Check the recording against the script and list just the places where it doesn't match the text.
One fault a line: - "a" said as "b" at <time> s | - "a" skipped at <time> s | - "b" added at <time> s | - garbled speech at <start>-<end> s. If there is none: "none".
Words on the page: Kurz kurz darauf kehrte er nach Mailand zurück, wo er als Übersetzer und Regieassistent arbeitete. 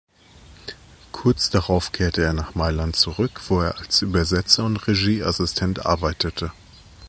- "kurz" skipped at 1.5 s